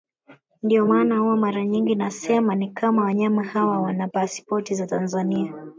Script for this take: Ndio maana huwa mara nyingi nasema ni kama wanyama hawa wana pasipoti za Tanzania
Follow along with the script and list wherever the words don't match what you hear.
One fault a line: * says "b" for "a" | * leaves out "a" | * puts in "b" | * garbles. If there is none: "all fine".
all fine